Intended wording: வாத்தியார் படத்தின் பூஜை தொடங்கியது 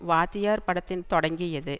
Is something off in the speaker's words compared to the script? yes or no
yes